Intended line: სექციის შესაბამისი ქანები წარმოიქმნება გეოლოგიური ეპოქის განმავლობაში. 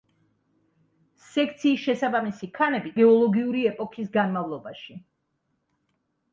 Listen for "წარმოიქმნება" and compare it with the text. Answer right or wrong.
wrong